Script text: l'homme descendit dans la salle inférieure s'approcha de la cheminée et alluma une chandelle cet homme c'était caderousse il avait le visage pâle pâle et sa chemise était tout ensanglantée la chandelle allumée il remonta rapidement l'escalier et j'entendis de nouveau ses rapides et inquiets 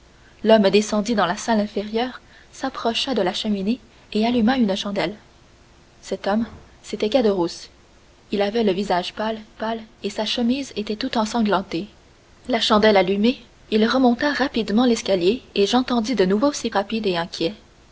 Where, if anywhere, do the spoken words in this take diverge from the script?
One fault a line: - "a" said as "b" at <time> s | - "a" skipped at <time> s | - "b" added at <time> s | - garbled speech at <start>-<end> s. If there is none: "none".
none